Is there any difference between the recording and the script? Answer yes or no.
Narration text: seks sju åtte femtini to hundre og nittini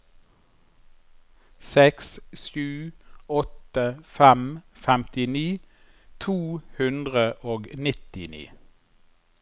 yes